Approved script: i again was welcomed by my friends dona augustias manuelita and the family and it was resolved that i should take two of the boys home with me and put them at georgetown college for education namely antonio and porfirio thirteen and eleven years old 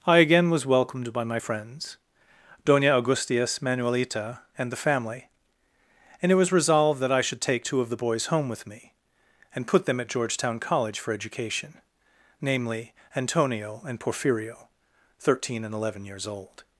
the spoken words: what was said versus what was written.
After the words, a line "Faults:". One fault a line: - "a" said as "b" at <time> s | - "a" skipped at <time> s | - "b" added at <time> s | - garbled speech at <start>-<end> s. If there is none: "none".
i again was welcomed by my friends dona augustias manuelita and the family and it was resolved that i should take two of the boys home with me and put them at georgetown college for education namely antonio and porfirio thirteen and eleven years old
Faults:
none